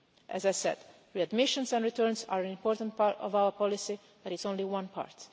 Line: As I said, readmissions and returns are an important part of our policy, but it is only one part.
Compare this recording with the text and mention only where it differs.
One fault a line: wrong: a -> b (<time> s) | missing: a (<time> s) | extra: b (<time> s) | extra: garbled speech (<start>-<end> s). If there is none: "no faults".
no faults